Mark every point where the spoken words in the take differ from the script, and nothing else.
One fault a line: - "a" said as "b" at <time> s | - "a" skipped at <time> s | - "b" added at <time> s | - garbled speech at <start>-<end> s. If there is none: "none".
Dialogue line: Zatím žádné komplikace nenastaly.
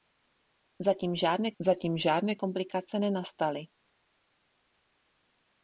- "zatím žádné" added at 1.6 s